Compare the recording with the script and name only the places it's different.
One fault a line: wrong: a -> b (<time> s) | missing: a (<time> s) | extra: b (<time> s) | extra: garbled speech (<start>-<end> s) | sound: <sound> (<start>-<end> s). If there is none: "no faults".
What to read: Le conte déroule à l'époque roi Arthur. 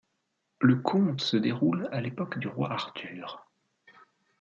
extra: se (1.2 s)
extra: du (2.4 s)